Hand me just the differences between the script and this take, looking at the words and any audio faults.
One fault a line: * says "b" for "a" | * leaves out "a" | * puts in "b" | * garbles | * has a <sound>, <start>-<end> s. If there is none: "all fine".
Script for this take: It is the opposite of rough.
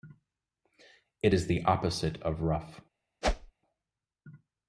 * has a whoosh, 3.2-3.5 s